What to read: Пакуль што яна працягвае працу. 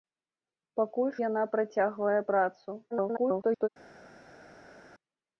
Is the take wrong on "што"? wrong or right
wrong